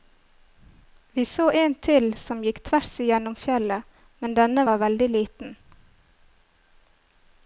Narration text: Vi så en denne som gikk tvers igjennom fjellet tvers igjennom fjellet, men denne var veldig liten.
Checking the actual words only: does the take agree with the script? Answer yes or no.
no